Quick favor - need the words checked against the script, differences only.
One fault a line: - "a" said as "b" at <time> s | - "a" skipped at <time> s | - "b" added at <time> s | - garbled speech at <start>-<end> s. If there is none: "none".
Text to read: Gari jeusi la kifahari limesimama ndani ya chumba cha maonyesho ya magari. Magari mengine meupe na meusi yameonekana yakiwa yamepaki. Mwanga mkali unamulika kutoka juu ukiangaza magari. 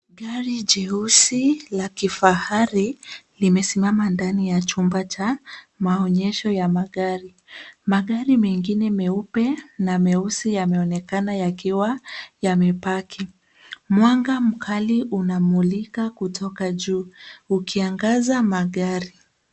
none